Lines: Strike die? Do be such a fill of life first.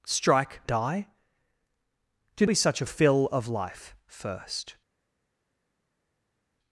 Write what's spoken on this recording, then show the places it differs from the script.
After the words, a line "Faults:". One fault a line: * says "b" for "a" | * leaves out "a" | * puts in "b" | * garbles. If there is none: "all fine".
Strike die? Do be such a fill of life first.
Faults:
all fine